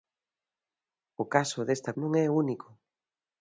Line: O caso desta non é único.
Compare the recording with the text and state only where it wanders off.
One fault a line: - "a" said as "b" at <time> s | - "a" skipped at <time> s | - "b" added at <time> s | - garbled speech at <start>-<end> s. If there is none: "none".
none